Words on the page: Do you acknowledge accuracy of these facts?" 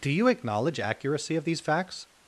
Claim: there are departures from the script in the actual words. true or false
false